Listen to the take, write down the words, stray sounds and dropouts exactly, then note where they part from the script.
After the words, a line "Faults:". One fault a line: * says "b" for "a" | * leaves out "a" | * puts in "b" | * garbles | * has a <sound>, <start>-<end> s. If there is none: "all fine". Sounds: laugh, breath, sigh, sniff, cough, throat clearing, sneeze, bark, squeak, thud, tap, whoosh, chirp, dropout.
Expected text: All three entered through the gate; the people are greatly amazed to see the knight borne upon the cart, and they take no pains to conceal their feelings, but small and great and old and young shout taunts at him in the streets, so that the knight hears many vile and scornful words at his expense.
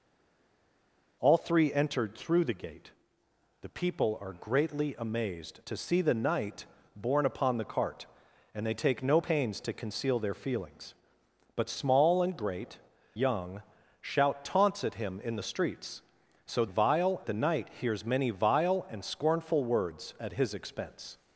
All three entered through the gate; the people are greatly amazed to see the knight borne upon the cart, and they take no pains to conceal their feelings, but small and great young shout taunts at him in the streets, so vile the knight hears many vile and scornful words at his expense.
Faults:
* leaves out "and old and"
* says "vile" for "that"